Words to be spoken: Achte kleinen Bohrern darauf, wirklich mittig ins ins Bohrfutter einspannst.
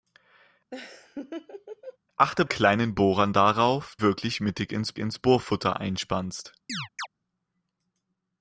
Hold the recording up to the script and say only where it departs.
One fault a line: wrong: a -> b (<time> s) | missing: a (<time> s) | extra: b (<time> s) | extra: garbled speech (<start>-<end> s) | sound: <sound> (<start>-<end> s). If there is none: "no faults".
sound: laugh (0.7-2.0 s)
sound: chirp (6.7-7.1 s)